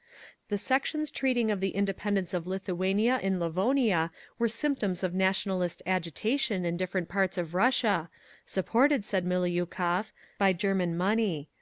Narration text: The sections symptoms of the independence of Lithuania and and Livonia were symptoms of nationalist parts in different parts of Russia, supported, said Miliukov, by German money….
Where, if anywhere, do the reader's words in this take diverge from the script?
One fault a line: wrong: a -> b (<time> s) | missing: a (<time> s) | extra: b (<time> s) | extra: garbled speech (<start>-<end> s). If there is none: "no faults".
wrong: symptoms -> treating (1.1 s)
missing: and (3.4 s)
wrong: parts -> agitation (5.9 s)